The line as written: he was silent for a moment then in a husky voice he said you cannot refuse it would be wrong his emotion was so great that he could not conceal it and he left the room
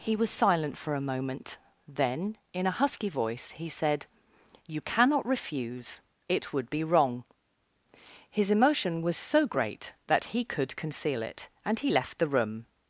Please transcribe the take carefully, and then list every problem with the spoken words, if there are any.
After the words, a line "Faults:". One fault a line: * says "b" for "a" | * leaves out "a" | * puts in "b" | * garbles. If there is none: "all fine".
he was silent for a moment then in a husky voice he said you cannot refuse it would be wrong his emotion was so great that he could conceal it and he left the room
Faults:
* leaves out "not"